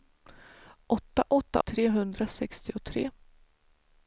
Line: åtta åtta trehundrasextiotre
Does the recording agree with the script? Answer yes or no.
yes